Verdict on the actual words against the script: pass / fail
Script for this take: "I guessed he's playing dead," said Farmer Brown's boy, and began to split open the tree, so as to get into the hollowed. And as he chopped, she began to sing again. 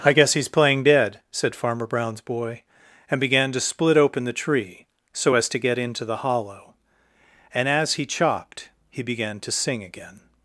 fail